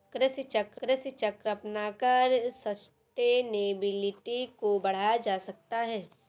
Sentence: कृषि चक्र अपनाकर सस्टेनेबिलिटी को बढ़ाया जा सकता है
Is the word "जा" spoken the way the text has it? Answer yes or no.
yes